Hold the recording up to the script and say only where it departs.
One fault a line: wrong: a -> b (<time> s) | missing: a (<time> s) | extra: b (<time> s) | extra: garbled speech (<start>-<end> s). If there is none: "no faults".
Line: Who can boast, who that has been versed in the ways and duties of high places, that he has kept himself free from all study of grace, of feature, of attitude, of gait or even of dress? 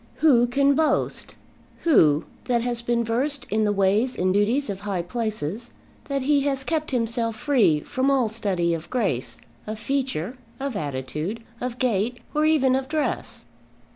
no faults